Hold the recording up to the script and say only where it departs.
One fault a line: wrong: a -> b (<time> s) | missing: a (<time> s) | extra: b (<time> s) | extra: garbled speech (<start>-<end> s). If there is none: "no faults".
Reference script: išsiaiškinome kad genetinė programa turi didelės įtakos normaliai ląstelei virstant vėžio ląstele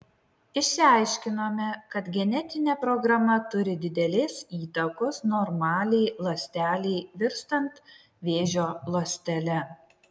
no faults